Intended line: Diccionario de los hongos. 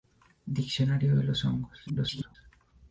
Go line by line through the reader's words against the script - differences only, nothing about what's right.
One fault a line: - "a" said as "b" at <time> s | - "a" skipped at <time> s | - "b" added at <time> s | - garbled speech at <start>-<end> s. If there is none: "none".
- garbled speech at 1.9-2.4 s